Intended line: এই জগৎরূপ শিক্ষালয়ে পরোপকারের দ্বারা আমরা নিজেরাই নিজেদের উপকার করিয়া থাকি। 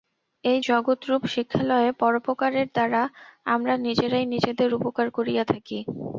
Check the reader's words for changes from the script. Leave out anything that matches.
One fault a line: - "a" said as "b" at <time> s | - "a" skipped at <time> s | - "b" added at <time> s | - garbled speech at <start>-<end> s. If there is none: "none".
none